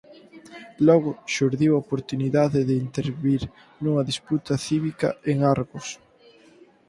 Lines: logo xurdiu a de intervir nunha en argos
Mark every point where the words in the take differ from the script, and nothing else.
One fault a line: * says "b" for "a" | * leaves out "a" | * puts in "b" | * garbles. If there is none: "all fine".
* puts in "oportunidade"
* puts in "disputa cívica"